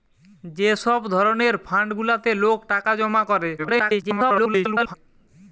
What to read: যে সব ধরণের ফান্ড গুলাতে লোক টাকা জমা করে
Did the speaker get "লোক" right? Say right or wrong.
right